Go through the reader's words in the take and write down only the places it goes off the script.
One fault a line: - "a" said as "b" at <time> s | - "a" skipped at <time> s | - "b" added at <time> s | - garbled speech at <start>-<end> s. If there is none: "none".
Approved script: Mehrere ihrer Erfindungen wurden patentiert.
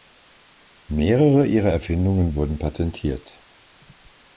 none